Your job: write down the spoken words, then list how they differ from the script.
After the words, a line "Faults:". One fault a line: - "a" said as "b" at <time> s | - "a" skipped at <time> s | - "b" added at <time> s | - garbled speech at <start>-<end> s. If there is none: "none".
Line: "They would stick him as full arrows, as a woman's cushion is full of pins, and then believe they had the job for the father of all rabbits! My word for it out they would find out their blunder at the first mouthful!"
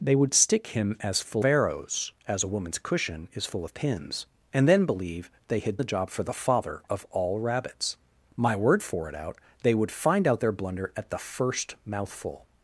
"They would stick him as full arrows, as a woman's cushion is full of pins, and then believe they had the job for the father of all rabbits! My word for it out they would find out their blunder at the first mouthful!"
Faults:
none